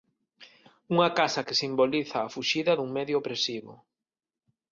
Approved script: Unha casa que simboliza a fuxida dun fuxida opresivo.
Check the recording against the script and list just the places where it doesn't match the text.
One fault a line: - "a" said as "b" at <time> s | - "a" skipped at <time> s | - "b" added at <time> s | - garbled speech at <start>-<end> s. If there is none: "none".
- "fuxida" said as "medio" at 3.0 s